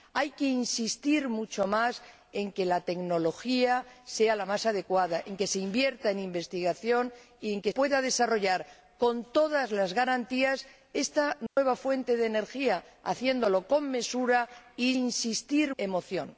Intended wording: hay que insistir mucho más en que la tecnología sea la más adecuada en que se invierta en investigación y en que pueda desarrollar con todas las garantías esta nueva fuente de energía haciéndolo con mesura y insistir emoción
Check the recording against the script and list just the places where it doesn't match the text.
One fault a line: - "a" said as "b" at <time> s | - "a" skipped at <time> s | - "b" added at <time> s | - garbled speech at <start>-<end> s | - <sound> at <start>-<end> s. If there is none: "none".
- dropout at 11.5-11.6 s